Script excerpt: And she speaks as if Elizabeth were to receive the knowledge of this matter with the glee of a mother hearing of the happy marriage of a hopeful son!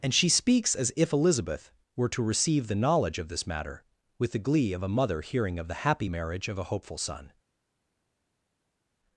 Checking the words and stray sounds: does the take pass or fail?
pass